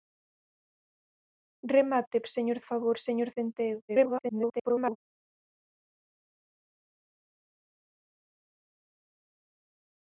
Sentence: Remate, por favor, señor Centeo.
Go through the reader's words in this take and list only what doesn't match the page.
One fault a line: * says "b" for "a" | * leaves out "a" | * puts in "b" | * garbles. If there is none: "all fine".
* says "señor" for "por"
* garbles